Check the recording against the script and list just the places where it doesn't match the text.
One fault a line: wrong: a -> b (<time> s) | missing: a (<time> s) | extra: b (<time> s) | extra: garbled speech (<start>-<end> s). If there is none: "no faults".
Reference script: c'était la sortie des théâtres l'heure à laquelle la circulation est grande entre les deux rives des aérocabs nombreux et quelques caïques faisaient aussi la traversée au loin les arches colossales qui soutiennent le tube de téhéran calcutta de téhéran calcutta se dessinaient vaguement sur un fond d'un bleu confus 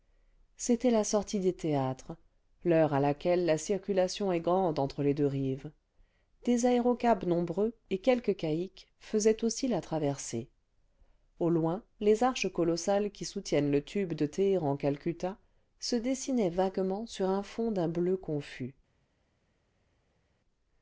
missing: de téhéran calcutta (15.4 s)